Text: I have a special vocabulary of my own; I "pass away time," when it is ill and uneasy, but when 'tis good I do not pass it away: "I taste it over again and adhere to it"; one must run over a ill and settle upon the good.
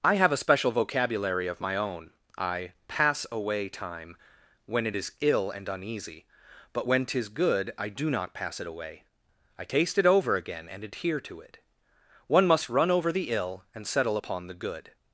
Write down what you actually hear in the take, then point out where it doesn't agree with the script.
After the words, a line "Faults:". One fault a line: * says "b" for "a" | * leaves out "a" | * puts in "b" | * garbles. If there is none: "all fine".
I have a special vocabulary of my own; I "pass away time," when it is ill and uneasy, but when 'tis good I do not pass it away: "I taste it over again and adhere to it"; one must run over the ill and settle upon the good.
Faults:
* says "the" for "a"